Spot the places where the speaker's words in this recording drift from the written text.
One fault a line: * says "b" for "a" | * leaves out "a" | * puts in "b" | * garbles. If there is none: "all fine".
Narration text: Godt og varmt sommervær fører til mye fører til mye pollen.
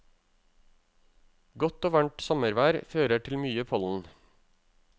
* leaves out "fører til mye"